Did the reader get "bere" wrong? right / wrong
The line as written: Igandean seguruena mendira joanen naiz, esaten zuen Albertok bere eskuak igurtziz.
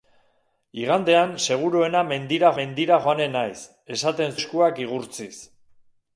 wrong